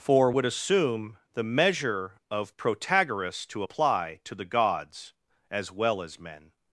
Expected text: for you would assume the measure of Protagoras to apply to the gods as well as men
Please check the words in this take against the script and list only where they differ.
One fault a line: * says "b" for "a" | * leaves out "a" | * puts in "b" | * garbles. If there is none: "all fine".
* leaves out "you"